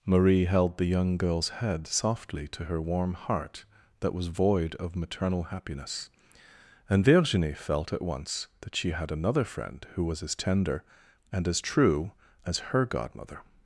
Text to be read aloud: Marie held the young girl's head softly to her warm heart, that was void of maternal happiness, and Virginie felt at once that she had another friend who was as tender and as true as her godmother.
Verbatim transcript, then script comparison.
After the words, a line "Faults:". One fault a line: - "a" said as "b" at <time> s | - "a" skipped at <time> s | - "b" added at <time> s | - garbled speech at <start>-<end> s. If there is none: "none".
Marie held the young girl's head softly to her warm heart, that was void of maternal happiness, and Virginie felt at once that she had another friend who was as tender and as true as her godmother.
Faults:
none